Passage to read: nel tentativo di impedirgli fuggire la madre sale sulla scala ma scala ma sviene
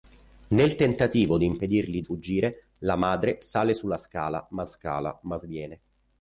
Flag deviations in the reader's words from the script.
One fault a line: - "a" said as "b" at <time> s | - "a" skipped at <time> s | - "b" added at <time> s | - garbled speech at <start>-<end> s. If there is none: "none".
none